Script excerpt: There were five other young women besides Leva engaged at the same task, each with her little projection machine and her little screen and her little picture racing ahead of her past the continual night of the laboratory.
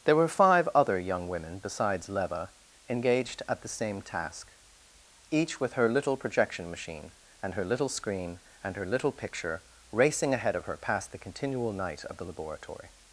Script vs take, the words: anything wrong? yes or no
no